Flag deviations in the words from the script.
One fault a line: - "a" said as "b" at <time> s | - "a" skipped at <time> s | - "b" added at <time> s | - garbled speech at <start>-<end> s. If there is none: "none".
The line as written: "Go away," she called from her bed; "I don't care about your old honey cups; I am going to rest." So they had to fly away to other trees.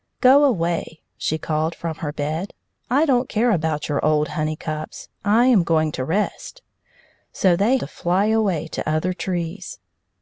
- "had" skipped at 7.8 s